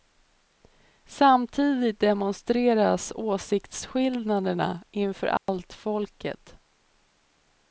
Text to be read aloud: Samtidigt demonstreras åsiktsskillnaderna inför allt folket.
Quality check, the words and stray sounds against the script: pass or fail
fail